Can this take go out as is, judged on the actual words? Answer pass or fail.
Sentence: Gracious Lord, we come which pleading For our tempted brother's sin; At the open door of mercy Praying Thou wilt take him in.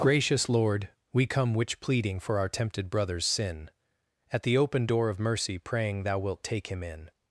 pass